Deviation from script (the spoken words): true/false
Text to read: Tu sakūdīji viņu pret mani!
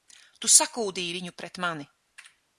false